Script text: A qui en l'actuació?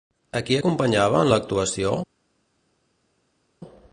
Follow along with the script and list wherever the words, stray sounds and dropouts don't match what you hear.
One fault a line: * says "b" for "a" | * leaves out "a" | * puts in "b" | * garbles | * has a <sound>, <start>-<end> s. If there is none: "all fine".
* puts in "acompanyava"